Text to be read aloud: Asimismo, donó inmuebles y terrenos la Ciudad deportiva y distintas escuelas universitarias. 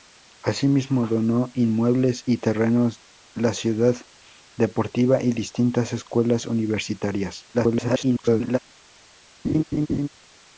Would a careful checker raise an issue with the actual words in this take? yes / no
yes